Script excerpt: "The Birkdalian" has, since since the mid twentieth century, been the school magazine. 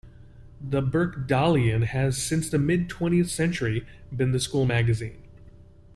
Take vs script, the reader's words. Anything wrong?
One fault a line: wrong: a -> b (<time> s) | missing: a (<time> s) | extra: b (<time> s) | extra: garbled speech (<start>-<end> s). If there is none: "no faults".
missing: since (2.5 s)